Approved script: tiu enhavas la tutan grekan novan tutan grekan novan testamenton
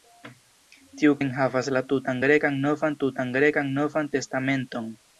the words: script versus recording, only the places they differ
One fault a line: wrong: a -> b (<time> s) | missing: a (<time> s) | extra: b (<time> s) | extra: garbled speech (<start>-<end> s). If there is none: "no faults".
no faults